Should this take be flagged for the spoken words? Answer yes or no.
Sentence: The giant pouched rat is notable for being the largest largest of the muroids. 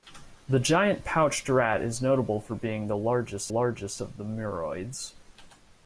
no